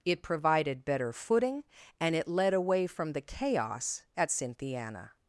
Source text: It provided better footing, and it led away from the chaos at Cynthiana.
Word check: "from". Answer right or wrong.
right